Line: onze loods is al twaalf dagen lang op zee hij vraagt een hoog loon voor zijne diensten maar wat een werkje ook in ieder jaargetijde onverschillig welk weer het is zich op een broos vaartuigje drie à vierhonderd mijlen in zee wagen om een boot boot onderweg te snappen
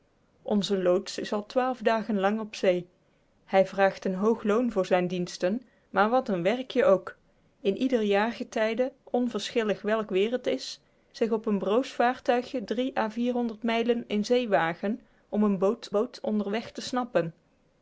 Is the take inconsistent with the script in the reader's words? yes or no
no